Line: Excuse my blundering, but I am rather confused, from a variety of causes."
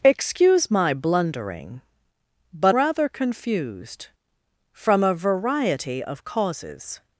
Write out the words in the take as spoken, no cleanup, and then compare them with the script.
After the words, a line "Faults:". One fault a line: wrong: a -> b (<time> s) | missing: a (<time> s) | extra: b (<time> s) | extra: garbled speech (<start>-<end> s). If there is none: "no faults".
Excuse my blundering, but rather confused, from a variety of causes."
Faults:
missing: I am (2.8 s)